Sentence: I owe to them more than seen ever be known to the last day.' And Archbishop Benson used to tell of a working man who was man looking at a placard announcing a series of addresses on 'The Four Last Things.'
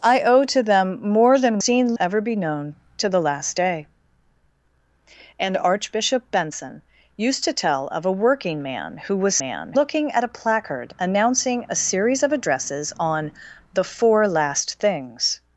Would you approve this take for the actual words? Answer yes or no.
yes